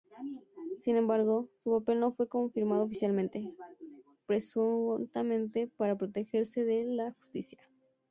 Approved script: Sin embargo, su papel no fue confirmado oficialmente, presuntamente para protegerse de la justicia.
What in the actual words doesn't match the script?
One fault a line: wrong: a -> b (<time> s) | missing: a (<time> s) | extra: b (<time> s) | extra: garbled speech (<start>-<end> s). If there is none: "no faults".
no faults